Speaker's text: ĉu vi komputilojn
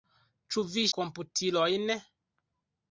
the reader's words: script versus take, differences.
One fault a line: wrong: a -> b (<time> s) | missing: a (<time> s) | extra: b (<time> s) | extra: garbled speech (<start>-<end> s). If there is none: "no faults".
no faults